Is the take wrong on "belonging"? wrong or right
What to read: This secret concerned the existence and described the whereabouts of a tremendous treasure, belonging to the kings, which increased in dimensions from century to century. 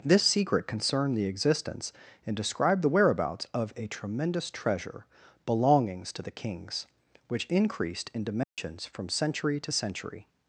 wrong